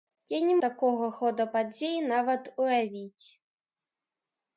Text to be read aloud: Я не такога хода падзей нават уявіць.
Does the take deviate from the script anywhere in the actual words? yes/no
no